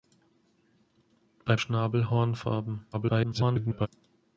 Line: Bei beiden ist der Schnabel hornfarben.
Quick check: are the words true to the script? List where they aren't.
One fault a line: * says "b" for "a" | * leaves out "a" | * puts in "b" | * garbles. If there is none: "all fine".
* leaves out "beiden ist der"
* garbles